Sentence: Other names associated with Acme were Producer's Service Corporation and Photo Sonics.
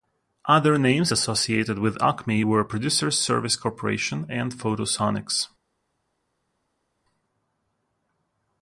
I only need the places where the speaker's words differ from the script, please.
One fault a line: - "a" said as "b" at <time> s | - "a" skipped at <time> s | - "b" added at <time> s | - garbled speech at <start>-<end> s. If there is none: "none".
none